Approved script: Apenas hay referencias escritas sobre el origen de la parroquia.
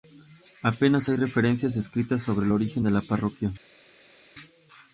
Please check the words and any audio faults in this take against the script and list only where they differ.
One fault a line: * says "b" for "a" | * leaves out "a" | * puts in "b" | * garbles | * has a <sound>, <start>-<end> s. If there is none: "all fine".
all fine